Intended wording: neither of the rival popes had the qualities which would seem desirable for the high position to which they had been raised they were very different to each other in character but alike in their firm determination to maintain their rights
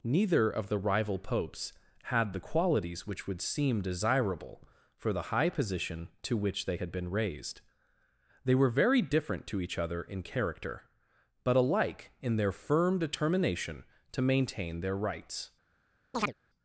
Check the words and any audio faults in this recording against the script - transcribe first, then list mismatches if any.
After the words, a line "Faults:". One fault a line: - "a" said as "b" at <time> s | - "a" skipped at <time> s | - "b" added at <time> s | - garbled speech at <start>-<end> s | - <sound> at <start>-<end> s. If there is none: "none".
neither of the rival popes had the qualities which would seem desirable for the high position to which they had been raised they were very different to each other in character but alike in their firm determination to maintain their rights
Faults:
- chirp at 16.1-16.3 s